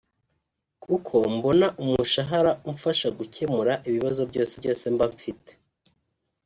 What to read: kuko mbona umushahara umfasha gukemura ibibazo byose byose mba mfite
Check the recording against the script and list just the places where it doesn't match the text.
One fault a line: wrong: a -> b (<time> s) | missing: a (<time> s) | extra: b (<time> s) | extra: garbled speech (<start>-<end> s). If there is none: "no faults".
no faults